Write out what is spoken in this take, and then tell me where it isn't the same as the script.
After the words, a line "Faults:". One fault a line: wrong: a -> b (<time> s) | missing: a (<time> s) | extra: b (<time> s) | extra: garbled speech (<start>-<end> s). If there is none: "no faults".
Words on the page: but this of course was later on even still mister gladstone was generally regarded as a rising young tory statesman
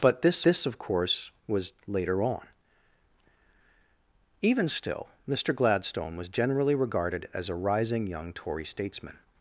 but this this of course was later on even still mister gladstone was generally regarded as a rising young tory statesman
Faults:
extra: this (0.4 s)